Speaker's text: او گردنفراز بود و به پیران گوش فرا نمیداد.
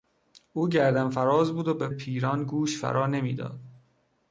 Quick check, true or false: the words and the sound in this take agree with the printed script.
true